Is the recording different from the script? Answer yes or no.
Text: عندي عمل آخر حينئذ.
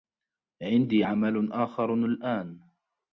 yes